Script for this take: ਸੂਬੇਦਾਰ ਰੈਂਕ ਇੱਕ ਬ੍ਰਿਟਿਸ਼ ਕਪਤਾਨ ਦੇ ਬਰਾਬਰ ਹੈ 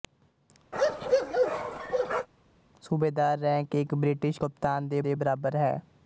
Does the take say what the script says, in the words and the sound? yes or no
no